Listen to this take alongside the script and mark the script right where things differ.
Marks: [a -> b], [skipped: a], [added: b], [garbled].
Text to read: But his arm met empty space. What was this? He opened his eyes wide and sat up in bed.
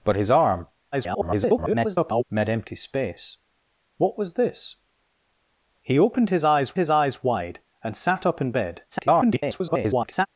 But his arm [garbled] met empty space. What was this? He opened his eyes [added: his eyes] wide and sat up in bed. [garbled]